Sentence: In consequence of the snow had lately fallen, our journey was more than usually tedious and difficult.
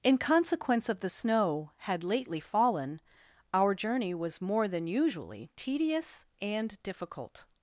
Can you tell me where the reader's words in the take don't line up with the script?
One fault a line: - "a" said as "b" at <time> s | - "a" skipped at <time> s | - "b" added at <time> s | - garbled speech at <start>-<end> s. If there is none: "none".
none